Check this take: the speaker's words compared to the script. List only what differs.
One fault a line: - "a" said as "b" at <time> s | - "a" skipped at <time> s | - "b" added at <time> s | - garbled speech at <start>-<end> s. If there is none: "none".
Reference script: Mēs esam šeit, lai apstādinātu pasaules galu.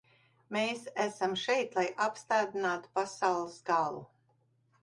none